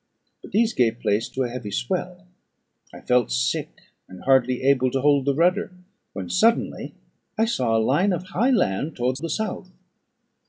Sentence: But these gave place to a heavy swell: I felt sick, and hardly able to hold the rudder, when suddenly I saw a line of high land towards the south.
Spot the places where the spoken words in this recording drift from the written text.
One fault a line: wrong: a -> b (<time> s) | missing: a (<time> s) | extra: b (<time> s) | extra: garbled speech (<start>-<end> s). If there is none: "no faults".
no faults